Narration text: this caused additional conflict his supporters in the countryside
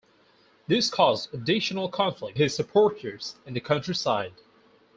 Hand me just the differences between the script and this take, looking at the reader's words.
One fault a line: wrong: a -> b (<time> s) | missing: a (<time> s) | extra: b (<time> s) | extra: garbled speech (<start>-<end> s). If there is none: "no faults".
no faults